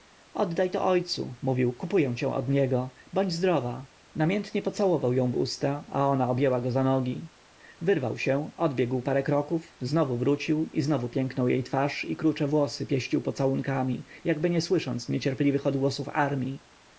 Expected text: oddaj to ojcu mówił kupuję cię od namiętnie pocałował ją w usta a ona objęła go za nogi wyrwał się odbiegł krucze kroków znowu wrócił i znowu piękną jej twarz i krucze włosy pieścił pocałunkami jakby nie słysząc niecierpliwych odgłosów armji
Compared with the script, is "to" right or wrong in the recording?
right